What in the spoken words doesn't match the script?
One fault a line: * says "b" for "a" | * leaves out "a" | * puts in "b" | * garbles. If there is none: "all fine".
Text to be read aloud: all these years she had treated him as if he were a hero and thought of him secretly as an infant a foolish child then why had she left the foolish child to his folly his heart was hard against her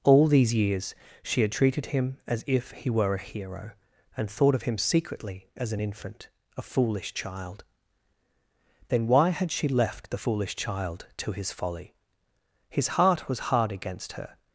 all fine